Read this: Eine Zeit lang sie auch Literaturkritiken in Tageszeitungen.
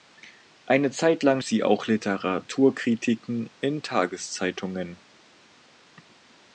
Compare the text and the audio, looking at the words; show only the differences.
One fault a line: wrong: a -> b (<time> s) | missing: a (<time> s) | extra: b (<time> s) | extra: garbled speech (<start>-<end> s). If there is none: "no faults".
no faults